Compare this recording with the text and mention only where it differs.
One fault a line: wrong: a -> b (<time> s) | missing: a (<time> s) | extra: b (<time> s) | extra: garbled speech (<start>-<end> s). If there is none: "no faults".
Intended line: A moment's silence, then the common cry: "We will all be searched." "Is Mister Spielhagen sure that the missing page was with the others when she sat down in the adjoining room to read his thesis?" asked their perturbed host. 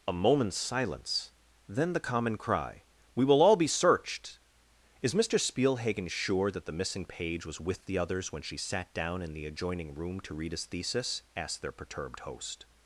no faults